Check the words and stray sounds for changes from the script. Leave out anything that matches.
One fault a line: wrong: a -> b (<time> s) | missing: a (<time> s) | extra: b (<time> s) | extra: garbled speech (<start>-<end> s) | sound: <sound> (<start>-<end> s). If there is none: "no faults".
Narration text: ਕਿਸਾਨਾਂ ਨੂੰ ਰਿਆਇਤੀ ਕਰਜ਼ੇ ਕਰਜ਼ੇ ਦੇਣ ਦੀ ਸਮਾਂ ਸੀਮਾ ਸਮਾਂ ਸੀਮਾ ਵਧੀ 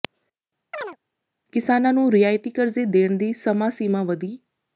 sound: chirp (0.7-1.0 s)
missing: ਕਰਜ਼ੇ (2.8 s)
missing: ਸਮਾਂ ਸੀਮਾ (4.0 s)